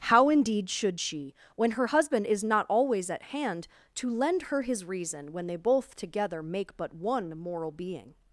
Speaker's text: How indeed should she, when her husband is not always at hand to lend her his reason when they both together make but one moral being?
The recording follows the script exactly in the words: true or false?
true